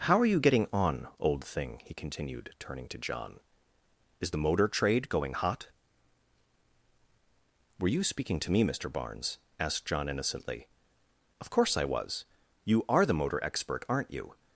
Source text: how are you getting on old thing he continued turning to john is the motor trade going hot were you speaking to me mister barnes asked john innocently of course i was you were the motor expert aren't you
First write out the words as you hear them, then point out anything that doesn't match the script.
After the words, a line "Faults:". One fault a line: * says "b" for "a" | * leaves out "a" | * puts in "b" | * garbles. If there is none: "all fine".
how are you getting on old thing he continued turning to john is the motor trade going hot were you speaking to me mister barnes asked john innocently of course i was you are the motor expert aren't you
Faults:
* says "are" for "were"